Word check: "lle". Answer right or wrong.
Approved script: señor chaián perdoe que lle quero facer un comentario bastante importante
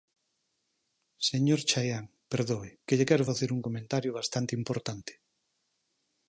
right